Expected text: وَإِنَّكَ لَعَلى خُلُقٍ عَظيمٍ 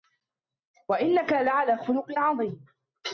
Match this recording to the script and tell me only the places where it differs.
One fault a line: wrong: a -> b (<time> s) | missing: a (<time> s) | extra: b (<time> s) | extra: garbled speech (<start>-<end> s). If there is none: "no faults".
no faults